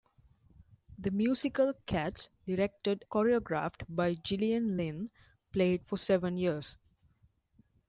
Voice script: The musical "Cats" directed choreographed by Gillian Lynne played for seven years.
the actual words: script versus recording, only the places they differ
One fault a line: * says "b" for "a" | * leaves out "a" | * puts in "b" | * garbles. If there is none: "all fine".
all fine